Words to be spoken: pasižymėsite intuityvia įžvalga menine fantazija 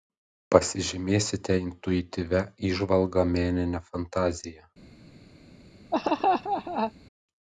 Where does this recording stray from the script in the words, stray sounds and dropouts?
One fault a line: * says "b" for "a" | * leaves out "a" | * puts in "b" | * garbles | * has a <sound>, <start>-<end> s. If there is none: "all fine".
* has a laugh, 5.9-6.9 s